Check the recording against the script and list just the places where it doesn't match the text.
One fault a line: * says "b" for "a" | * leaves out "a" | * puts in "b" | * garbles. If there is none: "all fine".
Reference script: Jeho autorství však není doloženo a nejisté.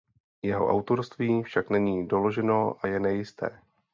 * puts in "je"